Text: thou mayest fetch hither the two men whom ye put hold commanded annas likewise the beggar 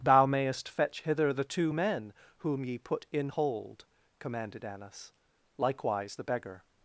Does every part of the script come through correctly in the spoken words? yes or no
no